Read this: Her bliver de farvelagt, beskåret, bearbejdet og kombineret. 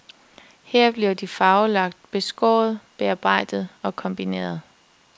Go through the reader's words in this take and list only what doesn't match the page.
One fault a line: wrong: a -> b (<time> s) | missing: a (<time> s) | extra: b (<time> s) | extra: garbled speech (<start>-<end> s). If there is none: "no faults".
no faults